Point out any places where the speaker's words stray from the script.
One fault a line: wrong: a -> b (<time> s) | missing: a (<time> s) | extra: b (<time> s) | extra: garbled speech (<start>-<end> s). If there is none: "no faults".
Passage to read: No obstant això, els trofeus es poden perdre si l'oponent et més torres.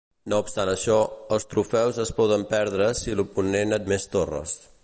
no faults